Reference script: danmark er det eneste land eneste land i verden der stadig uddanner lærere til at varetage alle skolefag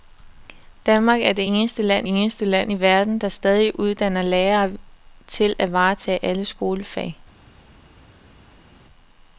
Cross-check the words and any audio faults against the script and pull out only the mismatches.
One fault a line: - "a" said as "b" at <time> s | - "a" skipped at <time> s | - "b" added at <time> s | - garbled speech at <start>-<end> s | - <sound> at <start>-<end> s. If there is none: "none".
none